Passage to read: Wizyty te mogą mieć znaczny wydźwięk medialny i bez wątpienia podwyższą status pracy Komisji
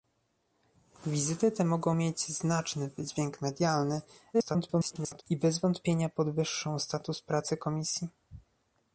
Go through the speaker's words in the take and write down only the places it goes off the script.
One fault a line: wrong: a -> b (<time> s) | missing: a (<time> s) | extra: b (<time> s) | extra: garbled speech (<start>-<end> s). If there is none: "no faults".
extra: garbled speech (4.3-5.2 s)